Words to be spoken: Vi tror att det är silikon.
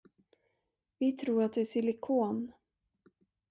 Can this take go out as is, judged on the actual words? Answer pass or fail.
pass